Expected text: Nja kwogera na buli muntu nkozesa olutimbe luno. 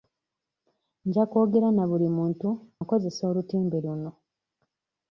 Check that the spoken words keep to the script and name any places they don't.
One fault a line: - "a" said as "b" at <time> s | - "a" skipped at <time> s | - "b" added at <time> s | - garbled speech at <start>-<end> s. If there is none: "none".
none